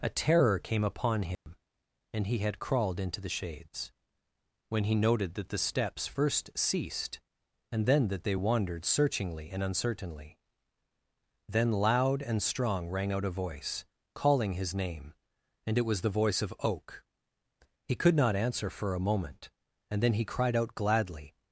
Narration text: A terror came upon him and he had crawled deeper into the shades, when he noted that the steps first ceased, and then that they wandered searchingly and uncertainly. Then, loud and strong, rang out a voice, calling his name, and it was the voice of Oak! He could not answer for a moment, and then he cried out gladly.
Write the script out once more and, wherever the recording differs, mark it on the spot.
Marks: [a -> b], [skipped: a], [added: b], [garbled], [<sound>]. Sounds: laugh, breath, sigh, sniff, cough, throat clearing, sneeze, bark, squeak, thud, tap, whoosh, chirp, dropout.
A terror came upon him [dropout] and he had crawled [skipped: deeper] into the shades, when he noted that the steps first ceased, and then that they wandered searchingly and uncertainly. Then, loud and strong, rang out a voice, calling his name, and it was the voice of Oak! He could not answer for a moment, and then he cried out gladly.